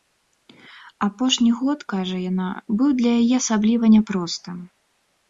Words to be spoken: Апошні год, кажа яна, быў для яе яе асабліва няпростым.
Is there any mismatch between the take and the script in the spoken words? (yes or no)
yes